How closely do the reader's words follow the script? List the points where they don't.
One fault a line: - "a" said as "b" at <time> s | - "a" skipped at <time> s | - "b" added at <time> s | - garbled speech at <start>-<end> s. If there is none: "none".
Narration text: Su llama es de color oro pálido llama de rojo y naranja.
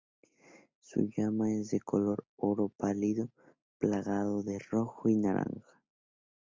- "llama" said as "plagado" at 3.8 s